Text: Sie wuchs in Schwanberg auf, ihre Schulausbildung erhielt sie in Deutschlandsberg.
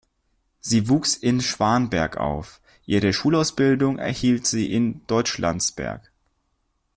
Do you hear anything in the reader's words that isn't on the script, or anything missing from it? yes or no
no